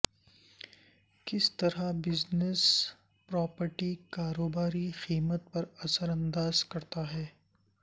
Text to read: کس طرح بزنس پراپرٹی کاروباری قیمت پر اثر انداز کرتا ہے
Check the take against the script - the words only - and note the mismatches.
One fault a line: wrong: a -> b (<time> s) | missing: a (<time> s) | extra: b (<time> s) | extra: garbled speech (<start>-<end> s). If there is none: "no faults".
no faults